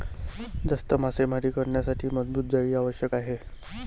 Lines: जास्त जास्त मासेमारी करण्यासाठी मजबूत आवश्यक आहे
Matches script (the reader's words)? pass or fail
fail